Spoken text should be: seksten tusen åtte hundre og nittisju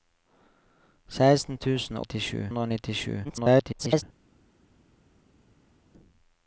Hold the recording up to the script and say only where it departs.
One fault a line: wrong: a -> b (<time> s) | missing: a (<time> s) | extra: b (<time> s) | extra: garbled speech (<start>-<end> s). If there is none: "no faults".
wrong: åtte -> nittisju (2.0 s)
extra: garbled speech (3.2-4.0 s)